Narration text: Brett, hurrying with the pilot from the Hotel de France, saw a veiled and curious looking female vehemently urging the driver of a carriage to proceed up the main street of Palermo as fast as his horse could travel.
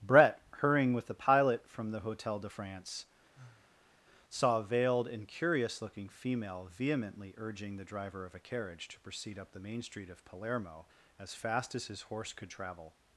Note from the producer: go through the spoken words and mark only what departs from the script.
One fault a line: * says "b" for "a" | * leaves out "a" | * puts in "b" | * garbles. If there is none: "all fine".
all fine